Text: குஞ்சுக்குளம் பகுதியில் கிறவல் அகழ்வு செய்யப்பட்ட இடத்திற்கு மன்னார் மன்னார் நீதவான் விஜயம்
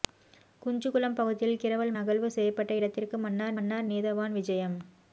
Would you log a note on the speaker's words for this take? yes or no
no